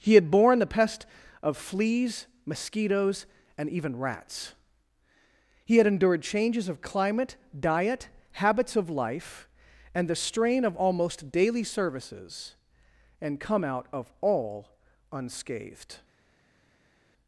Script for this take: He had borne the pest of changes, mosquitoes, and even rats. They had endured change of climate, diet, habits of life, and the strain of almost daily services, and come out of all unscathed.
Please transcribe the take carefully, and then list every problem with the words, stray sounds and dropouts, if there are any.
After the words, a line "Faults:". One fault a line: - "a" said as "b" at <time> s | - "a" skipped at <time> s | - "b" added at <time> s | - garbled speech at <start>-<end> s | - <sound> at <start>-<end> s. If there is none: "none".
He had borne the pest of fleas, mosquitoes, and even rats. He had endured changes of climate, diet, habits of life, and the strain of almost daily services, and come out of all unscathed.
Faults:
- "changes" said as "fleas" at 1.6 s
- "They" said as "He" at 5.6 s
- "change" said as "changes" at 6.2 s